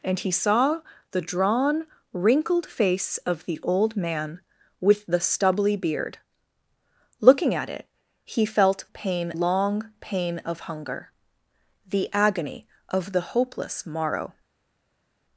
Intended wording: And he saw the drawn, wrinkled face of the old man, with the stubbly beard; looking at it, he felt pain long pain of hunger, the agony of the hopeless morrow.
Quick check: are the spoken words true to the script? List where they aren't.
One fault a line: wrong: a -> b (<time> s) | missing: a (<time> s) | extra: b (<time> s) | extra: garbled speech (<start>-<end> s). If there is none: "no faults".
no faults